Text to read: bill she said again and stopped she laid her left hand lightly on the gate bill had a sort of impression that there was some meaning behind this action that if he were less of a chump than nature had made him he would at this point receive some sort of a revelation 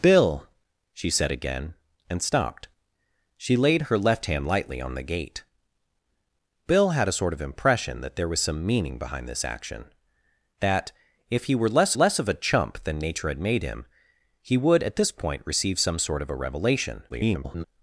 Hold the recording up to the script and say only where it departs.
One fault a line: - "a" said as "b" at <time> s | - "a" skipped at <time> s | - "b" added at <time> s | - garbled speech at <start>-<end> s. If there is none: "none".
- "less" added at 11.9 s
- garbled speech at 17.1-17.6 s